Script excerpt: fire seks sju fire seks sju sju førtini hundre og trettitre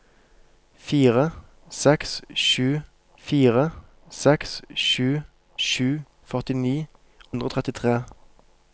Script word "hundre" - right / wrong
right